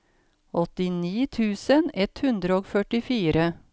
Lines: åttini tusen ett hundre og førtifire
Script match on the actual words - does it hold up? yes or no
yes